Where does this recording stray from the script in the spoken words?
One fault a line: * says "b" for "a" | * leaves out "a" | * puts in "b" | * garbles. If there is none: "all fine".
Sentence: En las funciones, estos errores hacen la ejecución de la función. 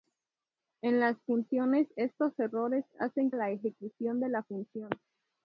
all fine